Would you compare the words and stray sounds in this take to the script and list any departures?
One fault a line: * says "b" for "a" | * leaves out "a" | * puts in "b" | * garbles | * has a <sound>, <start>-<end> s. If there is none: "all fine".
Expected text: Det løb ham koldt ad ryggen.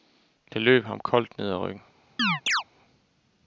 * puts in "ned"
* has a chirp, 2.2-2.6 s